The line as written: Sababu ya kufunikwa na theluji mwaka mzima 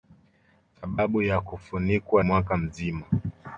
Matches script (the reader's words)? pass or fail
fail